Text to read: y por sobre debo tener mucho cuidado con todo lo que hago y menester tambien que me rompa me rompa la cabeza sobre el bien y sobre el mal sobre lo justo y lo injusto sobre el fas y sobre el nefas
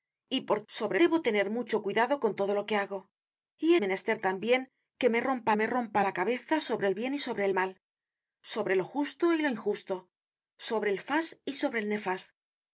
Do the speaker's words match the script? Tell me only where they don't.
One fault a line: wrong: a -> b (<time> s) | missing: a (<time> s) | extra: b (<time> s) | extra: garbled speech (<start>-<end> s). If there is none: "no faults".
no faults